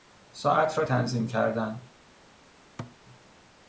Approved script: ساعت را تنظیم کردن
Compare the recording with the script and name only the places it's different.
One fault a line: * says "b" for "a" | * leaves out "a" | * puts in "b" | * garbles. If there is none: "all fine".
all fine